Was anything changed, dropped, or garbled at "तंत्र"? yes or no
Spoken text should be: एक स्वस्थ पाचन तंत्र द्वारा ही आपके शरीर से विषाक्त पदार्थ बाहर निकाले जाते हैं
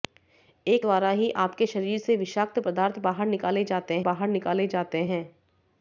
yes